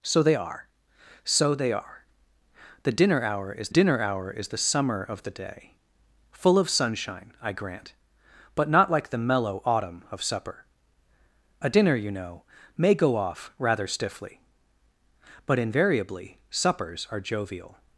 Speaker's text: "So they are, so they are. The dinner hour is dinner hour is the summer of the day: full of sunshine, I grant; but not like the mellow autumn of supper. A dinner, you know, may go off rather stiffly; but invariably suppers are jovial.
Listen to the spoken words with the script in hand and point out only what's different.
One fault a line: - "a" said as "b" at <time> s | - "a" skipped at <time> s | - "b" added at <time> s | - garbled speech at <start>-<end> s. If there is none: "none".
none